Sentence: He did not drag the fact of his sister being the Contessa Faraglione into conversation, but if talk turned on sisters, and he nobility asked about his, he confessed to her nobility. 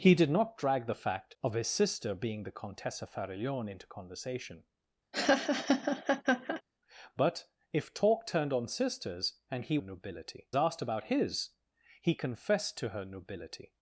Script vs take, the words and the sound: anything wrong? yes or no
yes